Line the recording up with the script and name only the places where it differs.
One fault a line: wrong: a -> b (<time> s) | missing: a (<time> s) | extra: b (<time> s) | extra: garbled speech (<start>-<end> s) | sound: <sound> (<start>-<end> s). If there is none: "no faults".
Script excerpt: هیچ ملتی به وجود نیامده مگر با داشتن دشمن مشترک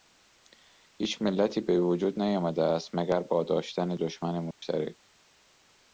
extra: است (2.6 s)
sound: dropout (4.5-4.6 s)